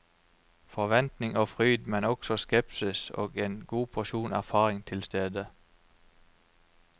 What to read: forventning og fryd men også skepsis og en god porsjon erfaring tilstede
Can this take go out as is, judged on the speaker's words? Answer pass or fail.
pass